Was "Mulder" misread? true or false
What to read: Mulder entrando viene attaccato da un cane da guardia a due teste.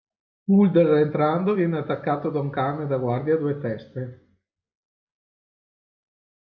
false